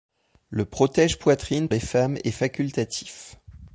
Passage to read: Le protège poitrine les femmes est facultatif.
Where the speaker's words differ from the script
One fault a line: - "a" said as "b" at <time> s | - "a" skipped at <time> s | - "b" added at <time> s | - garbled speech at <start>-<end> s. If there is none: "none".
none